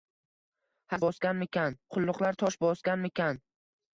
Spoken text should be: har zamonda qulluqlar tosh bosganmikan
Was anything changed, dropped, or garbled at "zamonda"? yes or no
yes